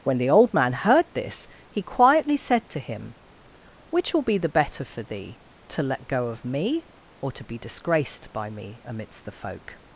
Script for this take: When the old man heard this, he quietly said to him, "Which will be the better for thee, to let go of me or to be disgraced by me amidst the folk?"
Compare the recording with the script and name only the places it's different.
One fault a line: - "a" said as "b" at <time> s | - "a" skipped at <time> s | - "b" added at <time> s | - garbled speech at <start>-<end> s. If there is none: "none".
none